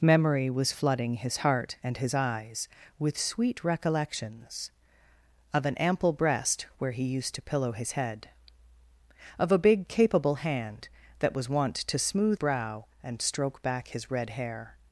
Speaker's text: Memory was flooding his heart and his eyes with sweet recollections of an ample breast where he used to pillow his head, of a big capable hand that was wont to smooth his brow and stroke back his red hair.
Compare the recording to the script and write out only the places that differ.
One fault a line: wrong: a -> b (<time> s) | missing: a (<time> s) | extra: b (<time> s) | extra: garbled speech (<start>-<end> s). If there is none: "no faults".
missing: his (12.4 s)